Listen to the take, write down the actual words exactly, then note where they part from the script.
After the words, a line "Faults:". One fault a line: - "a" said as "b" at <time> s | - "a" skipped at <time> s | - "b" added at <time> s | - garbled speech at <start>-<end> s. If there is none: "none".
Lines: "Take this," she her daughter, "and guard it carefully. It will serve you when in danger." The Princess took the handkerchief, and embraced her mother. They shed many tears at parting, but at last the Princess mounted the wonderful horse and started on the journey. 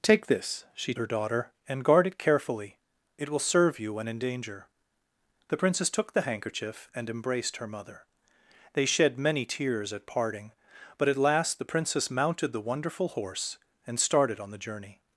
"Take this," she her daughter, "and guard it carefully. It will serve you when in danger." The Princess took the handkerchief, and embraced her mother. They shed many tears at parting, but at last the Princess mounted the wonderful horse and started on the journey.
Faults:
none